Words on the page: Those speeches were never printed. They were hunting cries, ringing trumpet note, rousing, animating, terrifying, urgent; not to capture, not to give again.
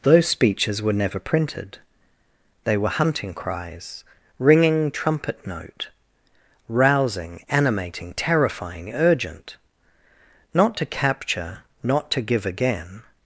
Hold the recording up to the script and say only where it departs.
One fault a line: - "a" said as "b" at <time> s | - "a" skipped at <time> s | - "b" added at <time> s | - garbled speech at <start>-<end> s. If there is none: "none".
none